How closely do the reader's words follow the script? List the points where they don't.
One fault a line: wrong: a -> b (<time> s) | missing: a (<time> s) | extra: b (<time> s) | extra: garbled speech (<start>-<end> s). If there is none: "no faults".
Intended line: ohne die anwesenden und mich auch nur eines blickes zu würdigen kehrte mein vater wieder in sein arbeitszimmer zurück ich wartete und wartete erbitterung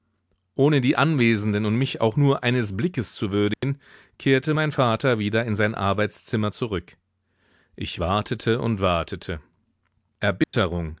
no faults